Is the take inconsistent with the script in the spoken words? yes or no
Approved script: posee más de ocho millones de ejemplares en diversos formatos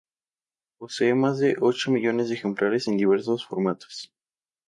no